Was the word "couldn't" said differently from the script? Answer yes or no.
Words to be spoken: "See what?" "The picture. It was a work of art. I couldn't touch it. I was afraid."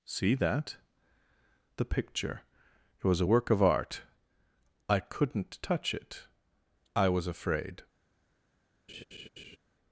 no